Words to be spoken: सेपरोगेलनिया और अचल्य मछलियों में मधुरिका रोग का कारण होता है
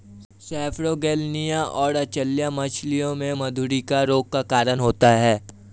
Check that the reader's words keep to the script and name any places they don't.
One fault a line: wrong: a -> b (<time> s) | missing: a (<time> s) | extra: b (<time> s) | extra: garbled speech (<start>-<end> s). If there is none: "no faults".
no faults